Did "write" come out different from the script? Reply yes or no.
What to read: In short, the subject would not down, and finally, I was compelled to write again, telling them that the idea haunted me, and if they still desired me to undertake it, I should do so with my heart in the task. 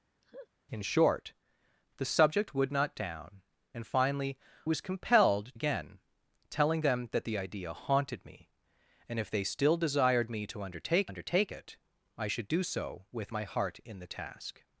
yes